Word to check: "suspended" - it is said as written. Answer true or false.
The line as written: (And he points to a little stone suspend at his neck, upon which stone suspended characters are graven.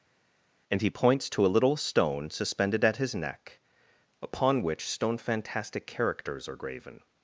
false